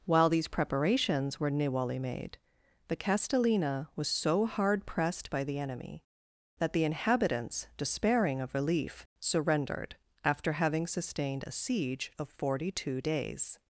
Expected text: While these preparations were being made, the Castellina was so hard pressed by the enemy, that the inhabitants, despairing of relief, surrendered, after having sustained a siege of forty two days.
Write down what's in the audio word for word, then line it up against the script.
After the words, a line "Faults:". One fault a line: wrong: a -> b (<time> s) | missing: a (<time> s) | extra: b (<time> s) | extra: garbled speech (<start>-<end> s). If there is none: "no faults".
While these preparations were niwali made, the Castellina was so hard pressed by the enemy, that the inhabitants, despairing of relief, surrendered, after having sustained a siege of forty two days.
Faults:
wrong: being -> niwali (1.5 s)